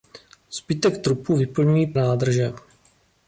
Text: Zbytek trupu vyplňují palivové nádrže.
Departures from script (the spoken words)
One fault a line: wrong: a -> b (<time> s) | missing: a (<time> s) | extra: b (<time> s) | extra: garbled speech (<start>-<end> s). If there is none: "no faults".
missing: palivové (1.9 s)